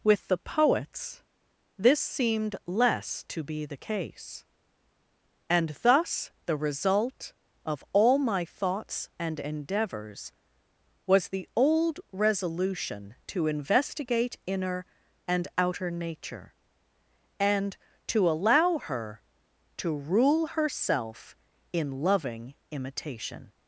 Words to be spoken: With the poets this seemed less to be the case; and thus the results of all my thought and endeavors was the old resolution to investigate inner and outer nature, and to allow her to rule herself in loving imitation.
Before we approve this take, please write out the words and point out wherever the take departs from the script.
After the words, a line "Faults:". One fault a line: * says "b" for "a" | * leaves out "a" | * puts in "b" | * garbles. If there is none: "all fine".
With the poets this seemed less to be the case; and thus the result of all my thoughts and endeavors was the old resolution to investigate inner and outer nature, and to allow her to rule herself in loving imitation.
Faults:
* says "result" for "results"
* says "thoughts" for "thought"